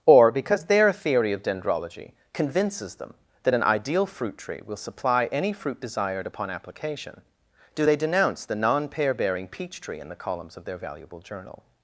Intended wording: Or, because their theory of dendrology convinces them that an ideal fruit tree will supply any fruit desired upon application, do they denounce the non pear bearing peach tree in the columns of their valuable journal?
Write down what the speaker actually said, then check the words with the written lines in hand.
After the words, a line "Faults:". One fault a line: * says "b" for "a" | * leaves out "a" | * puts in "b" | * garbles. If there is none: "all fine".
Or, because their theory of dendrology convinces them that an ideal fruit tree will supply any fruit desired upon application, do they denounce the non pear bearing peach tree in the columns of their valuable journal?
Faults:
all fine